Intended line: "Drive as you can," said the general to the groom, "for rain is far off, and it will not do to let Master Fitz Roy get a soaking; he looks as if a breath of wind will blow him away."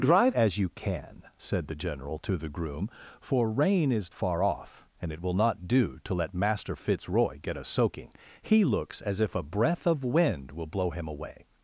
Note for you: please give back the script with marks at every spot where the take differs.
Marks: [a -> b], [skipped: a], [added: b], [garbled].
"Drive as you can," said the general to the groom, "for rain is far off, and it will not do to let Master Fitz Roy get a soaking; he looks as if a breath of wind will blow him away."